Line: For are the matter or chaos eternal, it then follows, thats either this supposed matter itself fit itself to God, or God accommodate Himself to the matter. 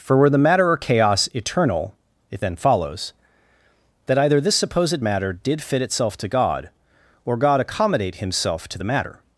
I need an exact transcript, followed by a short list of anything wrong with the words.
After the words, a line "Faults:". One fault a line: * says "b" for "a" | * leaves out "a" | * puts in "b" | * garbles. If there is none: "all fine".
For were the matter or chaos eternal, it then follows, that either this supposed matter did fit itself to God, or God accommodate Himself to the matter.
Faults:
* says "were" for "are"
* says "that" for "thats"
* says "did" for "itself"